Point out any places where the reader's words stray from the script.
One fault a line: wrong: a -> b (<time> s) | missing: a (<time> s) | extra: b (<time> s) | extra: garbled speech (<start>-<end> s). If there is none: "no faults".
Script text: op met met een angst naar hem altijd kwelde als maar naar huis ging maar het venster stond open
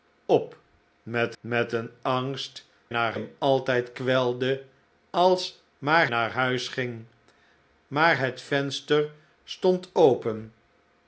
no faults